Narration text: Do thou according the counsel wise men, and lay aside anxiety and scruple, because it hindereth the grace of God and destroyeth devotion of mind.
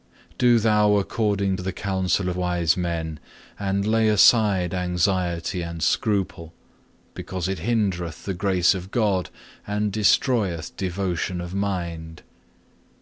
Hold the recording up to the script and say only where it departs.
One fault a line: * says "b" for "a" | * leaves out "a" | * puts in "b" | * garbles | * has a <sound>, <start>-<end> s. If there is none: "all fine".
all fine